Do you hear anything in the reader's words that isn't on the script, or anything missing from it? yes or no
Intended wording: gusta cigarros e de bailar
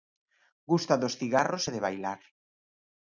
yes